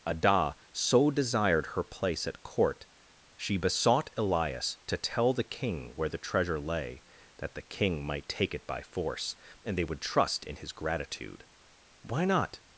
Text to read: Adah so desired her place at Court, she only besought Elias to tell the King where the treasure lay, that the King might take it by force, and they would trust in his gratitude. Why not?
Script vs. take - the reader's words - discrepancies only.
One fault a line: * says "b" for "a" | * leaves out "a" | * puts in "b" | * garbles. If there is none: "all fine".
* leaves out "only"